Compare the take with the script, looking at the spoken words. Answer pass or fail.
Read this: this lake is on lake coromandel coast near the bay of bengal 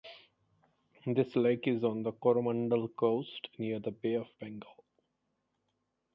fail